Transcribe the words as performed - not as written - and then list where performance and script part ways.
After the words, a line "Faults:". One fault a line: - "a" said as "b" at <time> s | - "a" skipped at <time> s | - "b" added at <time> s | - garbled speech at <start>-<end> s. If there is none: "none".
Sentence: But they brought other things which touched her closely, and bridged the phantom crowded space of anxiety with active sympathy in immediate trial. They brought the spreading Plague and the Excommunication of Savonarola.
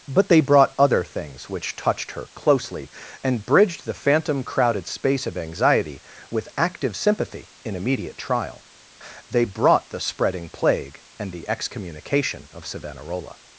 But they brought other things which touched her closely, and bridged the phantom crowded space of anxiety with active sympathy in immediate trial. They brought the spreading Plague and the Excommunication of Savonarola.
Faults:
none